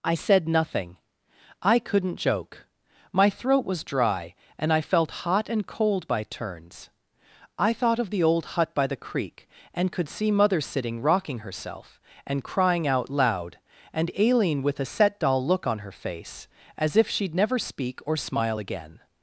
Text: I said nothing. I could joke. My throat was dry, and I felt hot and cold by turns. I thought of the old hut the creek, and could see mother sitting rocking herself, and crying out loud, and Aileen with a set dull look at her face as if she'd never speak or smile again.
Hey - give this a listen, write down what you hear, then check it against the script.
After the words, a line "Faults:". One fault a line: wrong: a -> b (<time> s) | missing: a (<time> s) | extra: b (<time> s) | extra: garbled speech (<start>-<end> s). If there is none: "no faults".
I said nothing. I couldn't joke. My throat was dry, and I felt hot and cold by turns. I thought of the old hut by the creek, and could see mother sitting rocking herself, and crying out loud, and Aileen with a set dull look on her face as if she'd never speak or smile again.
Faults:
wrong: could -> couldn't (1.8 s)
extra: by (8.7 s)
wrong: at -> on (15.7 s)